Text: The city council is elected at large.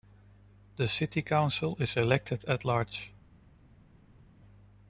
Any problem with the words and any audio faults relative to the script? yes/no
no